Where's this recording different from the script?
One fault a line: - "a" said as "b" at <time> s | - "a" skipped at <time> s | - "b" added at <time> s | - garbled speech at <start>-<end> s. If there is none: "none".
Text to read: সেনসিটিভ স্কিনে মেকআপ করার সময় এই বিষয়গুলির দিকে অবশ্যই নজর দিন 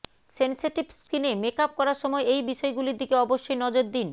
none